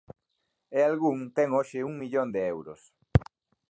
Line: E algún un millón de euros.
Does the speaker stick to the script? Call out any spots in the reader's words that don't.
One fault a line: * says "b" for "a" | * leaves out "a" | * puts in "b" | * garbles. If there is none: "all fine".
* puts in "ten hoxe"